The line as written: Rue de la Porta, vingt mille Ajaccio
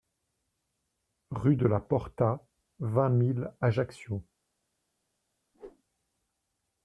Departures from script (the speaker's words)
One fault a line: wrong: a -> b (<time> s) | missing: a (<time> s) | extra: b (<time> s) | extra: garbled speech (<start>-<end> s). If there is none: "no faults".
no faults